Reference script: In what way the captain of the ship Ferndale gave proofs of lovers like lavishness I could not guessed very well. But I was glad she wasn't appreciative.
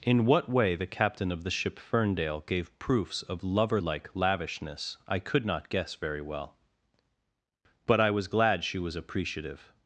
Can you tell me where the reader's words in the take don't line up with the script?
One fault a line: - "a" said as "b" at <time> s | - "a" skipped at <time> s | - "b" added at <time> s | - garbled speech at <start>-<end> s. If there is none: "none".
- "lovers" said as "lover" at 3.4 s
- "guessed" said as "guess" at 5.7 s
- "wasn't" said as "was" at 8.8 s